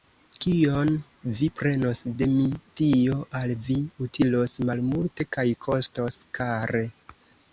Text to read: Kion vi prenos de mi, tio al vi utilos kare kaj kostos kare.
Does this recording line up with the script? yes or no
no